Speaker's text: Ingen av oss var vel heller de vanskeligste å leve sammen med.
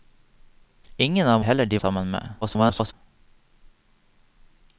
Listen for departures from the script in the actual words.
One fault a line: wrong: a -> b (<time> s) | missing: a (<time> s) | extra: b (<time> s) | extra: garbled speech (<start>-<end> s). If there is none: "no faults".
missing: oss var vel (1.4 s)
missing: vanskeligste å leve (1.8 s)
extra: garbled speech (2.4-2.9 s)